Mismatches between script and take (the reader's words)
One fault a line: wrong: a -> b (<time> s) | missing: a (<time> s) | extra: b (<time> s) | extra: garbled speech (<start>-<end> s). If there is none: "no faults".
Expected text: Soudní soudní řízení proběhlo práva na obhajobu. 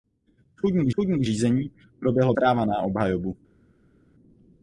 no faults